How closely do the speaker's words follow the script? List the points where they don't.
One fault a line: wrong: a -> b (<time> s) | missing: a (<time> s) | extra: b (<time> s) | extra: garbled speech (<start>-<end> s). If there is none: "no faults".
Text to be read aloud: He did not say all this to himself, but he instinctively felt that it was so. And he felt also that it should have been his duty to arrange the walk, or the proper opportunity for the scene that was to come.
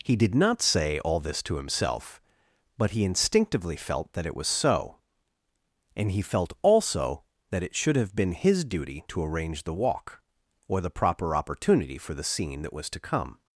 no faults